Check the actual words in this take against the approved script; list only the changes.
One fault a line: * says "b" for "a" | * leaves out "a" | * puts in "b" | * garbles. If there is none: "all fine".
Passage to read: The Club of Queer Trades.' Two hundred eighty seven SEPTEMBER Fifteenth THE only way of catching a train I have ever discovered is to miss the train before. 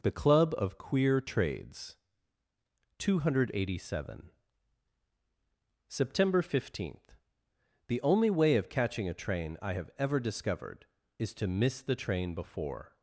all fine